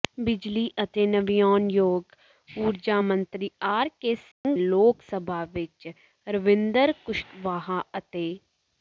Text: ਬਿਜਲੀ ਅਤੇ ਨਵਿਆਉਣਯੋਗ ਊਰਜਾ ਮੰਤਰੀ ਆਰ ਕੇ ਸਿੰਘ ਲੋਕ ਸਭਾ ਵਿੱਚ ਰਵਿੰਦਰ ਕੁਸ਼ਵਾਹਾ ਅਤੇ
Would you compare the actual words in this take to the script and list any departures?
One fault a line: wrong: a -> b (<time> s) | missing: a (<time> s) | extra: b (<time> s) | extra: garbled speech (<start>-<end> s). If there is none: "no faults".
no faults